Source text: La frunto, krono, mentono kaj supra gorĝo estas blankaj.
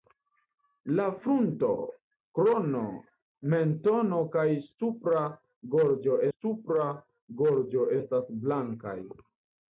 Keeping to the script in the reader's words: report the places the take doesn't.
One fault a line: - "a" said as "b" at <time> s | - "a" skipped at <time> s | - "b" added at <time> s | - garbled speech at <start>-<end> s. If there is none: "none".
- "supra gorĝo" added at 6.3 s